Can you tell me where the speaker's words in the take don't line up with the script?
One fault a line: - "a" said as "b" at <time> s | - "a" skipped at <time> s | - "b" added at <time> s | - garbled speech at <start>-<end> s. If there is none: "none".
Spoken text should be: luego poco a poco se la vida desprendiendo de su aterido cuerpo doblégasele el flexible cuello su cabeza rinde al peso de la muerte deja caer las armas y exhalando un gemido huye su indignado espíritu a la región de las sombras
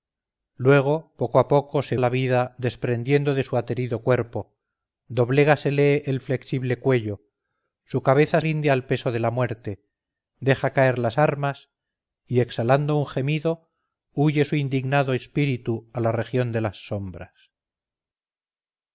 none